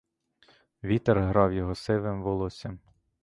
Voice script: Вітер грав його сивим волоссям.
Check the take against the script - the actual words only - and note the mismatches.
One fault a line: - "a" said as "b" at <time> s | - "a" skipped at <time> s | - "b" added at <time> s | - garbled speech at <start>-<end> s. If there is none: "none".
none